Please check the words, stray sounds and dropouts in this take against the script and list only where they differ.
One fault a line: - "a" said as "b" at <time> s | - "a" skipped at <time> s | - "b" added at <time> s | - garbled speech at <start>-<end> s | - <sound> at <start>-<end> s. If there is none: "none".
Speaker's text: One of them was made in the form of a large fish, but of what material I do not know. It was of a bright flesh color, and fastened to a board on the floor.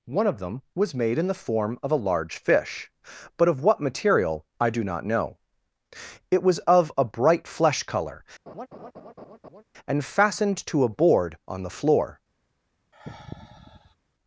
- laugh at 8.5-9.6 s
- sigh at 12.9-14.0 s